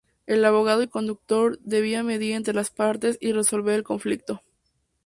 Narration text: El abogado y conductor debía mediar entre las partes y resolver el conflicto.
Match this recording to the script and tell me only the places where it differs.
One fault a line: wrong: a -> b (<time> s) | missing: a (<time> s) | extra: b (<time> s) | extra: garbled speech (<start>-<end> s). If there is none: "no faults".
no faults